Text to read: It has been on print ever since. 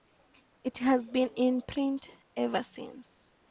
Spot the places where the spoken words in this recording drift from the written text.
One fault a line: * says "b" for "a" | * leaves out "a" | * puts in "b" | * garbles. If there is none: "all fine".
* says "in" for "on"